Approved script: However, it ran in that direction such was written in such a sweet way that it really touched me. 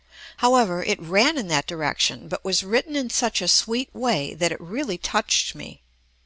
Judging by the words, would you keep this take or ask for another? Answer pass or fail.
fail